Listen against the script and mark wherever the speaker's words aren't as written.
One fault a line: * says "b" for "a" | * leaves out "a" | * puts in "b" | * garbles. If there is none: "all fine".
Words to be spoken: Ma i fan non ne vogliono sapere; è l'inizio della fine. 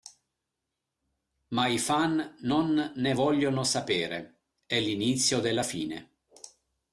all fine